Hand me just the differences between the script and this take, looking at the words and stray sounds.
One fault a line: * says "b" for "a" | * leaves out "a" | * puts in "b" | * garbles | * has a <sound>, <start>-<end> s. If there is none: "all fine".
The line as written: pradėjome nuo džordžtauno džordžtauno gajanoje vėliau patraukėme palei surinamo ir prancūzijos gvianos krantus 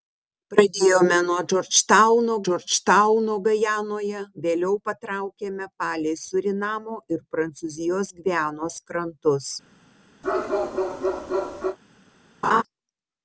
* has a bark, 10.2-11.8 s
* has a laugh, 12.4-12.6 s